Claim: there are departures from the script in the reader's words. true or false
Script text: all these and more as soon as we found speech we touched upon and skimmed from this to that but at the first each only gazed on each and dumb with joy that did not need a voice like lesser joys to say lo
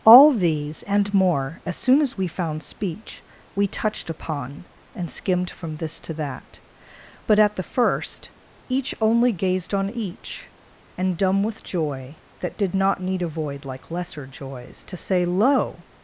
true